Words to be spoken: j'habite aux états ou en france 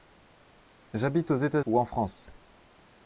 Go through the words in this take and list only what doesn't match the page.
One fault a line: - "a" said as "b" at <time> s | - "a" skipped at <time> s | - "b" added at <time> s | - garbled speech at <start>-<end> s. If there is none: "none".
none